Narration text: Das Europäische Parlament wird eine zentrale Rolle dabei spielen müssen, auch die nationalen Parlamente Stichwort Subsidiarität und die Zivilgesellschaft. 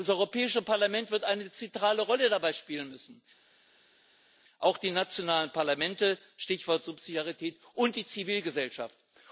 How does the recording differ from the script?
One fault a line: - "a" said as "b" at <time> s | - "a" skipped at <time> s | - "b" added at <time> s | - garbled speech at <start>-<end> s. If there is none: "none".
none